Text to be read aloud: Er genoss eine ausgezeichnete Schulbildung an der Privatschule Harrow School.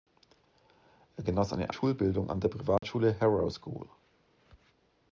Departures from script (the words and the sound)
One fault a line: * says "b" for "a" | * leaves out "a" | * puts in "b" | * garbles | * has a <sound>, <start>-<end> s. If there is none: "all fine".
* leaves out "ausgezeichnete"
* has a dropout, 2.8-2.8 s